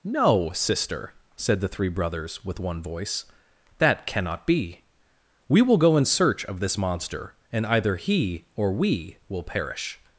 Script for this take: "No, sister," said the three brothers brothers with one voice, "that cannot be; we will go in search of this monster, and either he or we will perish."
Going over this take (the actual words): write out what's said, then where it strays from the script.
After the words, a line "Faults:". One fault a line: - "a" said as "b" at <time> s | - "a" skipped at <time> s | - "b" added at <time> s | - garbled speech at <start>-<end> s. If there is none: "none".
"No, sister," said the three brothers with one voice, "that cannot be; we will go in search of this monster, and either he or we will perish."
Faults:
- "brothers" skipped at 2.4 s